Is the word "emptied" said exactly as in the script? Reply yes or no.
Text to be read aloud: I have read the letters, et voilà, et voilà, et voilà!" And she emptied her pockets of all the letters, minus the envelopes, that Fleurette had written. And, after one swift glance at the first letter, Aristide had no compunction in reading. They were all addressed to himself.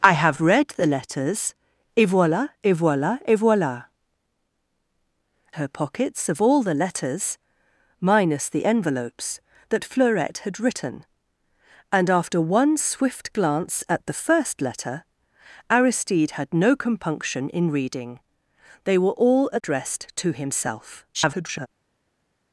no